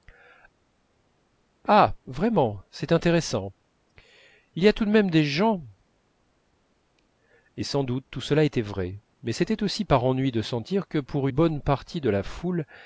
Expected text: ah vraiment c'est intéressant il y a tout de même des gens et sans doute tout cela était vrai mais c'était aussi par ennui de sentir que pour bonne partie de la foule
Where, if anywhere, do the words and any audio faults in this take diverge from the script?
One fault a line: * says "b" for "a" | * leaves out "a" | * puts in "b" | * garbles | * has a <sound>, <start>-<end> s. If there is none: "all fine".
all fine